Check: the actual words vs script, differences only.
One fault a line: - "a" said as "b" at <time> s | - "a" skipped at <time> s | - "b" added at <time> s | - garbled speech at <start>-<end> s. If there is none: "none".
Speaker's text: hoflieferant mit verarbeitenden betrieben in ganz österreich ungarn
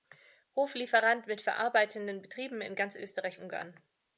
none